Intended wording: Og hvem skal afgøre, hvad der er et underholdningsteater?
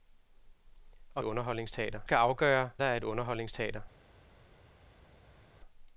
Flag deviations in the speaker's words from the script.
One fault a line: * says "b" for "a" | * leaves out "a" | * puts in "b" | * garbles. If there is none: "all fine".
* says "underholdningsteater" for "hvem"
* leaves out "hvad"